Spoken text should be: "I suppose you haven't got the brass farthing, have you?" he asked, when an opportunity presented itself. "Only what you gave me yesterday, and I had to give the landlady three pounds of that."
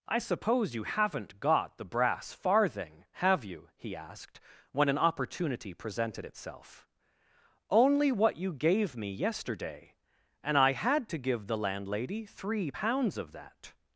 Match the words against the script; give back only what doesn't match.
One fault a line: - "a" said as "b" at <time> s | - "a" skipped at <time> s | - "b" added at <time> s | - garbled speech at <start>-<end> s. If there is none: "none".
none